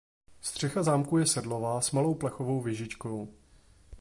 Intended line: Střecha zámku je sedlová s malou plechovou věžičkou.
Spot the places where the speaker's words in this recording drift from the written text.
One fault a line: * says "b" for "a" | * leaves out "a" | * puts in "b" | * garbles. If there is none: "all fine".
all fine